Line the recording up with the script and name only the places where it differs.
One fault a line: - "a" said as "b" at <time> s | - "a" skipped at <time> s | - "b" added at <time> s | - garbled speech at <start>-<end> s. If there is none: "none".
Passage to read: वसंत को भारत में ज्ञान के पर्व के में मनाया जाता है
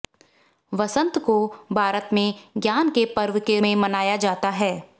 none